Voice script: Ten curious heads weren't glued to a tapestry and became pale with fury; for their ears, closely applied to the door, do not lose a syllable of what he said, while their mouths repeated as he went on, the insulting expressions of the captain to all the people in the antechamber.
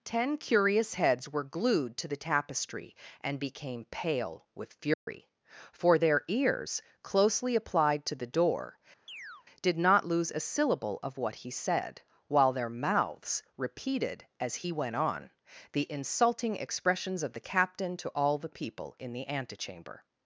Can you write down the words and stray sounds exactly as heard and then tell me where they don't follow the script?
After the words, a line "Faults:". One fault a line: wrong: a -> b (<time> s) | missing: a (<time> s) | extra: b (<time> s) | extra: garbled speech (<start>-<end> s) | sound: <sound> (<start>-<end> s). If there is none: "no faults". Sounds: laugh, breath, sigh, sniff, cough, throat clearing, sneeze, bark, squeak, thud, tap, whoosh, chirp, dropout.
Ten curious heads were glued to the tapestry and became pale with fury; for their ears, closely applied to the door, did not lose a syllable of what he said, while their mouths repeated as he went on, the insulting expressions of the captain to all the people in the antechamber.
Faults:
wrong: weren't -> were (1.3 s)
wrong: a -> the (2.1 s)
sound: dropout (4.9-5.1 s)
sound: chirp (9.1-9.5 s)
wrong: do -> did (9.6 s)